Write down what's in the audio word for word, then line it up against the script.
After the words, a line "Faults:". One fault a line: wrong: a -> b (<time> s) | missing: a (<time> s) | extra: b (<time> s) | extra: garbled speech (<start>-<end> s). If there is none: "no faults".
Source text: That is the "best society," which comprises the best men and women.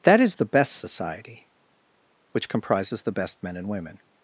That is the "best society," which comprises the best men and women.
Faults:
no faults